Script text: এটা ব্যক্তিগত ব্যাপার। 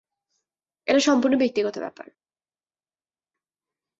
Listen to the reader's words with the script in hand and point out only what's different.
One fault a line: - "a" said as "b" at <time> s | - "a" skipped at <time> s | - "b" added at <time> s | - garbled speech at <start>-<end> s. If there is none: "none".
- "সম্পূর্ণ" added at 1.0 s